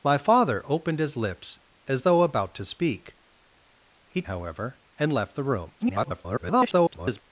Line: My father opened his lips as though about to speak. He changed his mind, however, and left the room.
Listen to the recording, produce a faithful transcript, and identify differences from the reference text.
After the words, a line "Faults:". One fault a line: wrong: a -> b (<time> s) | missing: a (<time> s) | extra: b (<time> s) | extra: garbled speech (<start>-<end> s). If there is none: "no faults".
My father opened his lips as though about to speak. He however, and left the room. [garbled]
Faults:
missing: changed his mind (4.2 s)
extra: garbled speech (5.8-7.2 s)